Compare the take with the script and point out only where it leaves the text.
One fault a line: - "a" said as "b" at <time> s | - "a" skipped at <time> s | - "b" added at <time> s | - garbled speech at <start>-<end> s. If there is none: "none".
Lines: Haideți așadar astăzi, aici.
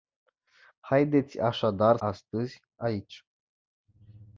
none